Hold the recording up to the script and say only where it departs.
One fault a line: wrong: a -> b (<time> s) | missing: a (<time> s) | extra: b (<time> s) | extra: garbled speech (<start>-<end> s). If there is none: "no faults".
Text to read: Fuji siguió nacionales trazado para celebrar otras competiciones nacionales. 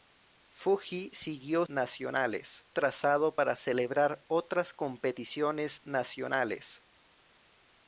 no faults